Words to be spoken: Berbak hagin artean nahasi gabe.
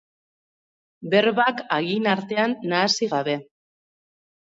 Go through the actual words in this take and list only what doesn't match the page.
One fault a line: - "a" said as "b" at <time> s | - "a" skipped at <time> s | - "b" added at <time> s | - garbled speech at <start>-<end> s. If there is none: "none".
none